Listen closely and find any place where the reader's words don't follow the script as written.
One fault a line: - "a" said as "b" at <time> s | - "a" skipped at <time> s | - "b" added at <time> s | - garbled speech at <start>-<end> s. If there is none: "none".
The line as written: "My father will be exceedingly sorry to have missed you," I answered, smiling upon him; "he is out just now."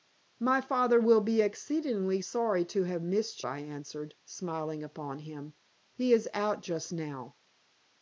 - "you" skipped at 3.4 s